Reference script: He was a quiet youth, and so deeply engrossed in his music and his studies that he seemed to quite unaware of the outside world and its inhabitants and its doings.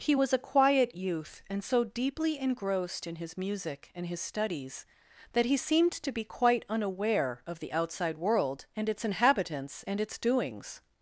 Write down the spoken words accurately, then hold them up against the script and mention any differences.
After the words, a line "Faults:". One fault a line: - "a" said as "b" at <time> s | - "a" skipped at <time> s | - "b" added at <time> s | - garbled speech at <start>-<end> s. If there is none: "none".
He was a quiet youth, and so deeply engrossed in his music and his studies that he seemed to be quite unaware of the outside world and its inhabitants and its doings.
Faults:
- "be" added at 6.1 s